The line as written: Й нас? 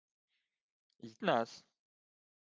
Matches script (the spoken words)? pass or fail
pass